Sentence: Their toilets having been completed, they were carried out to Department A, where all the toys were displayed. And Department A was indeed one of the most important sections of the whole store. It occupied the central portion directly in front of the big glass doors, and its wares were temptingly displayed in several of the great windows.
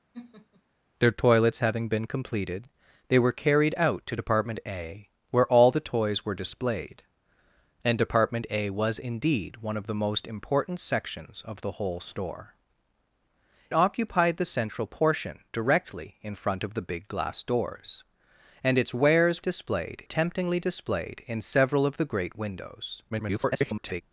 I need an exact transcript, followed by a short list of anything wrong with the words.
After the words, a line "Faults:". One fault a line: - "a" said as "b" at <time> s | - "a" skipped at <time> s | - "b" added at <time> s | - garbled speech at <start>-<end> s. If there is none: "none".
Their toilets having been completed, they were carried out to Department A, where all the toys were displayed. And Department A was indeed one of the most important sections of the whole store. Occupied the central portion directly in front of the big glass doors, and its wares displayed temptingly displayed in several of the great windows. [garbled]
Faults:
- "It" skipped at 12.5 s
- "were" said as "displayed" at 19.4 s
- garbled speech at 23.1-24.0 s